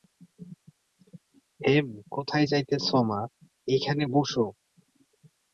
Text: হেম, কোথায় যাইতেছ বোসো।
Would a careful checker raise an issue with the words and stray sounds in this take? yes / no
yes